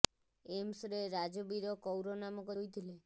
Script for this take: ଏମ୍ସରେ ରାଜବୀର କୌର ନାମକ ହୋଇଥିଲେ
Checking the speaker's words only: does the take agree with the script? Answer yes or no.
yes